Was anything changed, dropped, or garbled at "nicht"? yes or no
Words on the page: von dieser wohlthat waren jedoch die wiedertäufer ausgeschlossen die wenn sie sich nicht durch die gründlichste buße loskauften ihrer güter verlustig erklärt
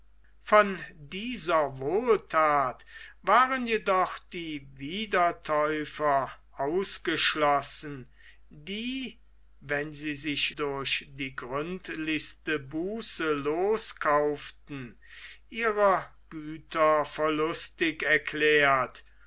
yes